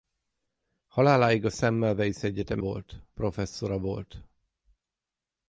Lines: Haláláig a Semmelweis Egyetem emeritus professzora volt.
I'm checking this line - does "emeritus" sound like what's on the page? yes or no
no